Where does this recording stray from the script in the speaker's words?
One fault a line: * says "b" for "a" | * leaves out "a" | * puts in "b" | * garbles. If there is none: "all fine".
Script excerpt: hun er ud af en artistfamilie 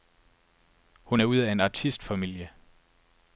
all fine